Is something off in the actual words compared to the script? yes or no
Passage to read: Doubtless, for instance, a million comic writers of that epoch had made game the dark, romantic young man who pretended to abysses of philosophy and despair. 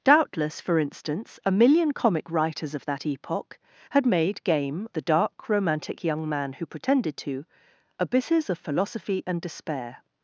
no